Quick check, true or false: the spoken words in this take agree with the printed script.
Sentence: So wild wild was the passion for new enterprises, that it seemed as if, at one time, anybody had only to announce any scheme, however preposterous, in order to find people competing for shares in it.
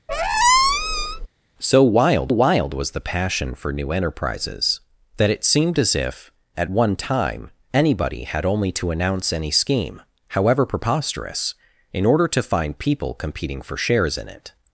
true